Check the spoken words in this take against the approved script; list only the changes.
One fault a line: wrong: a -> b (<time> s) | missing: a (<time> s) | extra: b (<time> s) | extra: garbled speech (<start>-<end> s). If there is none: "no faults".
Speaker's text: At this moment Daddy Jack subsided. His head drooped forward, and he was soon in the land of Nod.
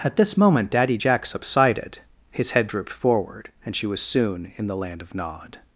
wrong: he -> she (3.7 s)